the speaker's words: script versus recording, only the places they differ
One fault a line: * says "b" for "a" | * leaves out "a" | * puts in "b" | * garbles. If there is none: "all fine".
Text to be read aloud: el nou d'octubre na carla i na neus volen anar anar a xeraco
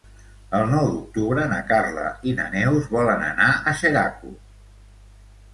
* leaves out "anar"